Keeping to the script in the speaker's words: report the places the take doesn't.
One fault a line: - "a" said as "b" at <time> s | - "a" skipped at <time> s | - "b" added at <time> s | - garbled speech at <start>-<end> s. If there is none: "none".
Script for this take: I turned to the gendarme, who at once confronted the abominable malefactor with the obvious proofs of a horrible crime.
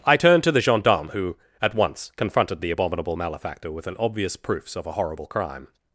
- "the" said as "an" at 3.9 s